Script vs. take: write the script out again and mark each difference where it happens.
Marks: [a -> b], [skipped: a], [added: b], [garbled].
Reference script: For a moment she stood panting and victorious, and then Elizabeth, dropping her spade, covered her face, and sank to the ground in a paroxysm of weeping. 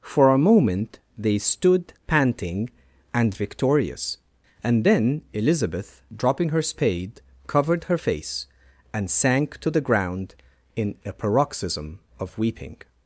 For a moment [she -> they] stood panting and victorious, and then Elizabeth, dropping her spade, covered her face, and sank to the ground in a paroxysm of weeping.